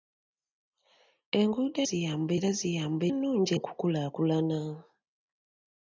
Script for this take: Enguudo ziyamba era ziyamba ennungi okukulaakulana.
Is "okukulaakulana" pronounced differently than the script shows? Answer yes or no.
no